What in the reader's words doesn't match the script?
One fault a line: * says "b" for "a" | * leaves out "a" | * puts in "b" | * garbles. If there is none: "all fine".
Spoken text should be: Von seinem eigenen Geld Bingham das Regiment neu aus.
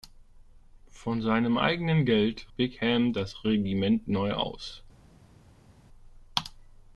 all fine